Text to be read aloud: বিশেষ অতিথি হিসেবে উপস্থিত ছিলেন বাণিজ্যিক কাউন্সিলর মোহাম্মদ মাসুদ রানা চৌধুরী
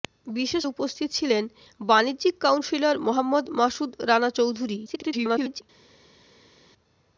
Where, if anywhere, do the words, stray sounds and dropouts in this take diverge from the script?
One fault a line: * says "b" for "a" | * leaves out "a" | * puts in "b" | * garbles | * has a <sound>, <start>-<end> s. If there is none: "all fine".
* leaves out "অতিথি হিসেবে"
* garbles